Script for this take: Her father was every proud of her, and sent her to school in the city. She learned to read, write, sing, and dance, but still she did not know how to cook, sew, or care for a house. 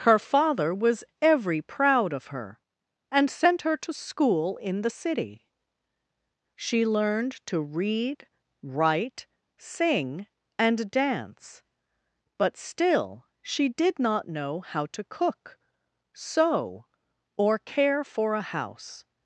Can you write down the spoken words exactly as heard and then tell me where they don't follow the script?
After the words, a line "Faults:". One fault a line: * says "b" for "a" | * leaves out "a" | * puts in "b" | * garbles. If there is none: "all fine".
Her father was every proud of her, and sent her to school in the city. She learned to read, write, sing, and dance, but still she did not know how to cook, sew, or care for a house.
Faults:
all fine